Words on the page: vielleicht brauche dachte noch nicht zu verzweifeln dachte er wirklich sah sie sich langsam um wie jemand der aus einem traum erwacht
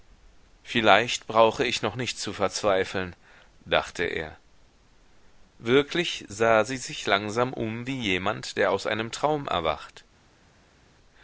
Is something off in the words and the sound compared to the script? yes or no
yes